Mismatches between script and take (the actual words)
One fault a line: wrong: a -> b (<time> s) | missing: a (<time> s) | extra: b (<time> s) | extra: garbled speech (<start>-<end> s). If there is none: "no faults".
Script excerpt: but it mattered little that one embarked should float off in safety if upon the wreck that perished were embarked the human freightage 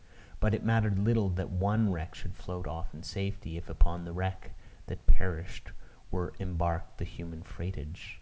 wrong: embarked -> wreck (1.9 s)